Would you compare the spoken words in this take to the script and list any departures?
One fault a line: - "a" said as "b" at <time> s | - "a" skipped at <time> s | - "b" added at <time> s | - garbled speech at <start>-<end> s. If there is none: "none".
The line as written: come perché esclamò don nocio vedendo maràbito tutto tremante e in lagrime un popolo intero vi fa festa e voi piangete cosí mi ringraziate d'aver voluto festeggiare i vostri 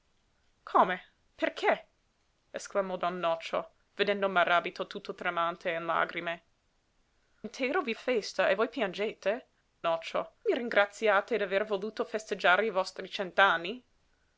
- "un popolo" skipped at 6.4 s
- "fa" skipped at 7.9 s
- "cosí" said as "nocio" at 9.8 s